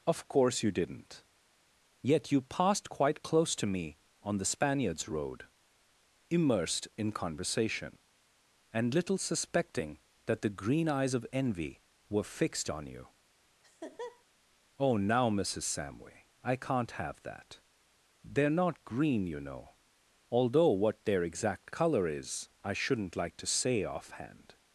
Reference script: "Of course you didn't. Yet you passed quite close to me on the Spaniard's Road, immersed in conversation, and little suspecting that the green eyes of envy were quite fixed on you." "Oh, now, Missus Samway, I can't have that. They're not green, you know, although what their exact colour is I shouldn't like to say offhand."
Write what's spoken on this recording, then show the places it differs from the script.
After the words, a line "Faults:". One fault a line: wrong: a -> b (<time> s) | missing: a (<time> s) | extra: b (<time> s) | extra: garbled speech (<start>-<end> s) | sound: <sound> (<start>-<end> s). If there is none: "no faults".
"Of course you didn't. Yet you passed quite close to me on the Spaniard's Road, immersed in conversation, and little suspecting that the green eyes of envy were fixed on you." "Oh, now, Missus Samway, I can't have that. They're not green, you know, although what their exact colour is I shouldn't like to say offhand."
Faults:
missing: quite (12.2 s)
sound: laugh (13.6-14.2 s)